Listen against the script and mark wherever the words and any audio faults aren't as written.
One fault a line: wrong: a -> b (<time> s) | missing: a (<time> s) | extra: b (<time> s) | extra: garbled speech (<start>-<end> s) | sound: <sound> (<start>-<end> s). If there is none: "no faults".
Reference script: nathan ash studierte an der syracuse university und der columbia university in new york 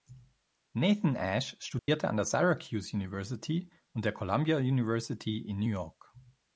sound: dropout (1.8-1.9 s)